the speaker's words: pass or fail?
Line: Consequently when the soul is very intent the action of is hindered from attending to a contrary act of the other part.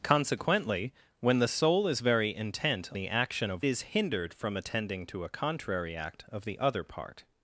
pass